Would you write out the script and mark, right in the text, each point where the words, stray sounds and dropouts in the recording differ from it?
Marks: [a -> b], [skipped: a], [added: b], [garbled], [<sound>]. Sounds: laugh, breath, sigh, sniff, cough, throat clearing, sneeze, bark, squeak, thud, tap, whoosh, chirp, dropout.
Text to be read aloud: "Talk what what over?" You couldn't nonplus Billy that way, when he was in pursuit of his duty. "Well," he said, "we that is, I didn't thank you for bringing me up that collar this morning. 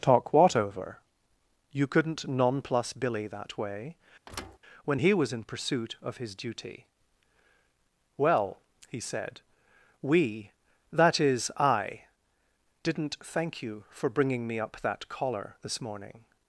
"Talk what [skipped: what] over?" You couldn't nonplus Billy that way, [thud] when he was in pursuit of his duty. "Well," he said, "we that is, I didn't thank you for bringing me up that collar this morning.